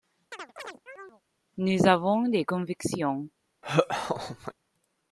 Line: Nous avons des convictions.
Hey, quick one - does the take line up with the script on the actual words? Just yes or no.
yes